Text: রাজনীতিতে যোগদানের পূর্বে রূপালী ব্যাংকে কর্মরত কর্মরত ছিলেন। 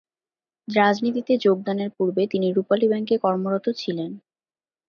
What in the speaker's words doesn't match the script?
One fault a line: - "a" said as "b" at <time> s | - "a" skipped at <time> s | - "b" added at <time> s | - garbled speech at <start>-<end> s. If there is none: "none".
- "তিনি" added at 2.3 s
- "কর্মরত" skipped at 3.6 s